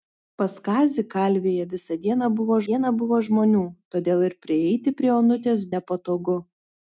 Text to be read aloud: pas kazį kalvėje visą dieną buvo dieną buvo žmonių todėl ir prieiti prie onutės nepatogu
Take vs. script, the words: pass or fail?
pass